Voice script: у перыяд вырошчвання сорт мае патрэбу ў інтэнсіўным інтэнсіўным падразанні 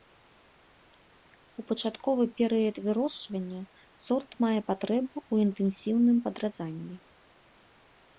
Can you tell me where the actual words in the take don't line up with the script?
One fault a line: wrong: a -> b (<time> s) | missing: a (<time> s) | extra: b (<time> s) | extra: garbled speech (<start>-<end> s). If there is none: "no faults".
extra: пачатковы (1.7 s)
missing: інтэнсіўным (6.2 s)